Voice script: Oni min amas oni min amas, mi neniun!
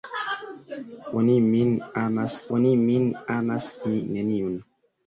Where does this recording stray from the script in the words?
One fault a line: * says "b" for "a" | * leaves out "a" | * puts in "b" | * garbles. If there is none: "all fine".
all fine